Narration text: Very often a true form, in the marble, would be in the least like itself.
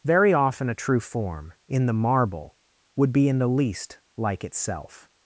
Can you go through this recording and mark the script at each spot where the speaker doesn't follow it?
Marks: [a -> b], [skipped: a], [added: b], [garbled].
Very often a true form, in the marble, would be in the least like itself.